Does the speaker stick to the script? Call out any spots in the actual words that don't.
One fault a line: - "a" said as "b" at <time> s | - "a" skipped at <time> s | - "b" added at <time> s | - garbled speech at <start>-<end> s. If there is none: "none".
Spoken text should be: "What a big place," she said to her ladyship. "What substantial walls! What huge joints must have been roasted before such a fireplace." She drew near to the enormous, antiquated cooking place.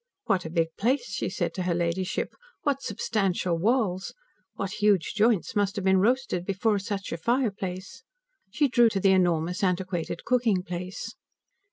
- "near" skipped at 8.9 s